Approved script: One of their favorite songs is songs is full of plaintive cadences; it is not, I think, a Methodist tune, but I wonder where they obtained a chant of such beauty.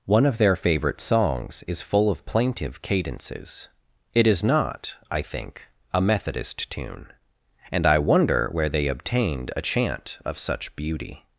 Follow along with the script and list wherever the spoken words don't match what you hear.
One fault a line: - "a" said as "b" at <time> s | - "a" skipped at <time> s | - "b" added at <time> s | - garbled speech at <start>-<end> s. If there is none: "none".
- "songs is" skipped at 1.8 s
- "but" said as "and" at 7.7 s